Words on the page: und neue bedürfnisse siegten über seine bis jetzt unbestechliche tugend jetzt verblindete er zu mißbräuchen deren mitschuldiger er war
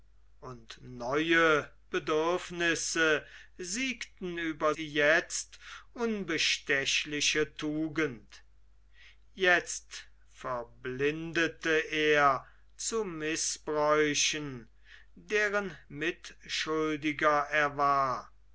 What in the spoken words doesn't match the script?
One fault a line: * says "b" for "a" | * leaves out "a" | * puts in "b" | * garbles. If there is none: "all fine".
* leaves out "seine bis"